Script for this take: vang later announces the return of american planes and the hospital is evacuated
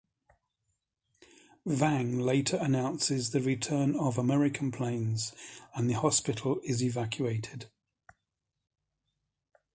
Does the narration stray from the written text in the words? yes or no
no